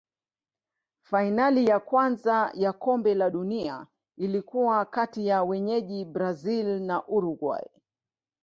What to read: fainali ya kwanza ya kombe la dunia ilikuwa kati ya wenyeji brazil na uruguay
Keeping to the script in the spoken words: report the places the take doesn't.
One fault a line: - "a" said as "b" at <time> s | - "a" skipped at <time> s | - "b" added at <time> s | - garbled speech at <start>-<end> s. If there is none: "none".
none